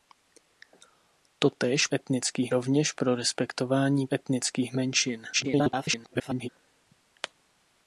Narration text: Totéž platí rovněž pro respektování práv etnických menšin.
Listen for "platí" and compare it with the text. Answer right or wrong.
wrong